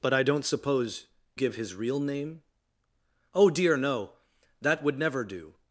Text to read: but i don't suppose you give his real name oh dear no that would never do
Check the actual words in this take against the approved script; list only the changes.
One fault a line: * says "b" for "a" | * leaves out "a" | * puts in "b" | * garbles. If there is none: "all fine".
* leaves out "you"